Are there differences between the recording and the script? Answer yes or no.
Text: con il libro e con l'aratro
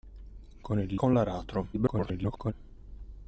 yes